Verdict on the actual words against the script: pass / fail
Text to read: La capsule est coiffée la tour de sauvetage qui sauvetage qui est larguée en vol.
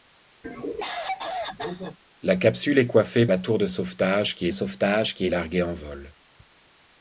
pass